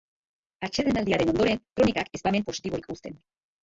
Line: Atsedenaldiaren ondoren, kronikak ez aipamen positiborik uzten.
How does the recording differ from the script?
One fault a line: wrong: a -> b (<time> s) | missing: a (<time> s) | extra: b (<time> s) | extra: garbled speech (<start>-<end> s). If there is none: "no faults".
no faults